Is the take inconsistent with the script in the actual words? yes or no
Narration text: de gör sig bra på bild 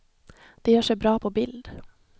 no